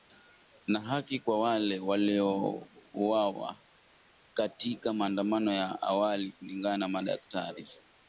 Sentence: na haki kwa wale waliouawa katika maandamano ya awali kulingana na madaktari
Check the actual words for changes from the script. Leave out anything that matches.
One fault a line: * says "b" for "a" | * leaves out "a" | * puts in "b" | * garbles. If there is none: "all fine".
all fine